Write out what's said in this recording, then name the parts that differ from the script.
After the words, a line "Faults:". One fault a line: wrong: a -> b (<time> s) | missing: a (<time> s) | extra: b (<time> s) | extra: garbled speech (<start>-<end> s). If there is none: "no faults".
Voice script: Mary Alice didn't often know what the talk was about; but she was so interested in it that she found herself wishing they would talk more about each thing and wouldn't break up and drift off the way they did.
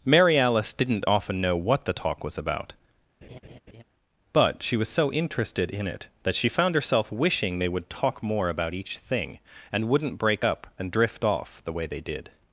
Mary Alice didn't often know what the talk was about; but she was so interested in it that she found herself wishing they would talk more about each thing and wouldn't break up and drift off the way they did.
Faults:
no faults